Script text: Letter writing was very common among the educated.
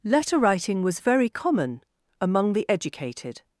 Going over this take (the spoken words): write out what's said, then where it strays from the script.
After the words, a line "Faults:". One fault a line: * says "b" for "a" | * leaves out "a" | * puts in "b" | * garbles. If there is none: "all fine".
Letter writing was very common among the educated.
Faults:
all fine